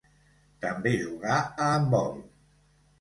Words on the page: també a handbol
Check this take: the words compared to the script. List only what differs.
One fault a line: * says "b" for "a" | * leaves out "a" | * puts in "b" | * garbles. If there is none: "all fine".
* puts in "jugà"